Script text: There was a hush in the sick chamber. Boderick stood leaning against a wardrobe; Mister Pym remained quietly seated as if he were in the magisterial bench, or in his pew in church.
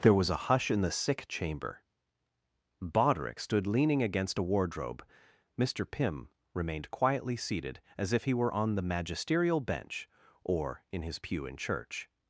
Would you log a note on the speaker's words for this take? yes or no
yes